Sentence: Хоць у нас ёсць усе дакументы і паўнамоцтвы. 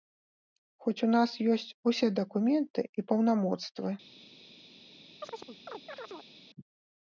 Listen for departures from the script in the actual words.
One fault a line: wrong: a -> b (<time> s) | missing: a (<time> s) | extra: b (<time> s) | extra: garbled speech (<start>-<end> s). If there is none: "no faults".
no faults